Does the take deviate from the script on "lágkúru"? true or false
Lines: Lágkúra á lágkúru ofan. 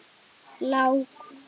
true